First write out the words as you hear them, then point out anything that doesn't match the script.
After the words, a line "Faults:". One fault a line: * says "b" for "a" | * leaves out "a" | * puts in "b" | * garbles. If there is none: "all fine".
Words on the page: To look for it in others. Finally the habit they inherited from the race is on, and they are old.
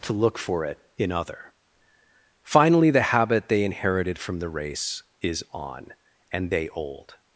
To look for it in other. Finally the habit they inherited from the race is on, and they old.
Faults:
* says "other" for "others"
* leaves out "are"